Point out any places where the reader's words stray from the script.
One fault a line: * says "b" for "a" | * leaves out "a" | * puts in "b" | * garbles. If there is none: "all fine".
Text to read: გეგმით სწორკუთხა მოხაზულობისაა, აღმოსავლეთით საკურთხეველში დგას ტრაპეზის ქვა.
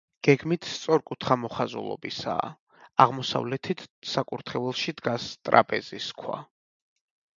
all fine